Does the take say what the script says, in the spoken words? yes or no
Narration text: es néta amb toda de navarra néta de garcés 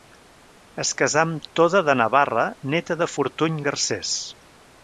no